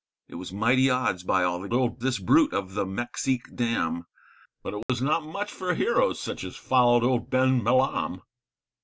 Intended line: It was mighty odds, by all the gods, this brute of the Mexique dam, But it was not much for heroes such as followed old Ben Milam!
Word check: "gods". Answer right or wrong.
wrong